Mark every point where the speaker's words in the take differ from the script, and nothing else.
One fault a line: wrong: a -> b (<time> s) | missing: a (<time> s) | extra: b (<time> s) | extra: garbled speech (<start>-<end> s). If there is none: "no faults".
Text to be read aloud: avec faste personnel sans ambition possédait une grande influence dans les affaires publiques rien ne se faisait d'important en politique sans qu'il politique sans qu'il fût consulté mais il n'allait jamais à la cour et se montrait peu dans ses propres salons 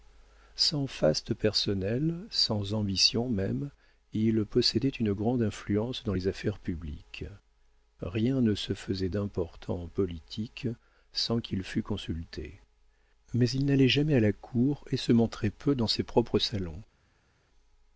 wrong: avec -> sans (0.6 s)
extra: même il (3.3 s)
missing: politique sans qu'il (11.6 s)